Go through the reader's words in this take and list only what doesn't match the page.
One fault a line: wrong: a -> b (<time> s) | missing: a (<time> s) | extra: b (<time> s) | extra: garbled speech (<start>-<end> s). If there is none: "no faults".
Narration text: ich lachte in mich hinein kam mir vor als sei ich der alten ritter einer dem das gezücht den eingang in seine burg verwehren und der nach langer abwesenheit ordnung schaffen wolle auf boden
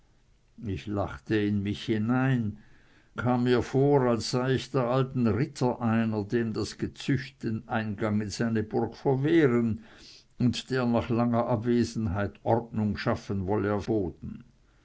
no faults